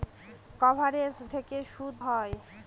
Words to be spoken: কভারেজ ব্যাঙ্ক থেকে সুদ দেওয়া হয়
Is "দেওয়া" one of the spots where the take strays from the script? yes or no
yes